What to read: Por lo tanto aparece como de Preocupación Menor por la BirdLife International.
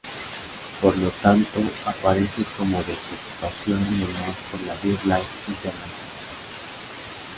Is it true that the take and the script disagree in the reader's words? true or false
false